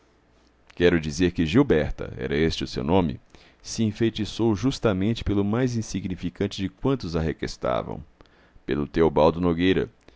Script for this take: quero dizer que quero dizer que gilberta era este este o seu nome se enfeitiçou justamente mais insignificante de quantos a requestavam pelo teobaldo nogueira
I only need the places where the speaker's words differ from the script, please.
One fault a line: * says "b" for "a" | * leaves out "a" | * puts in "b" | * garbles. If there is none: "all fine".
* leaves out "quero dizer que"
* leaves out "este"
* puts in "pelo"